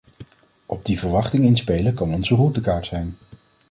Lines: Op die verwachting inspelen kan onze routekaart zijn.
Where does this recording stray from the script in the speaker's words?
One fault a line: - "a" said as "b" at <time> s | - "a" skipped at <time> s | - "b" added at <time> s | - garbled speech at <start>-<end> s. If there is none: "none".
none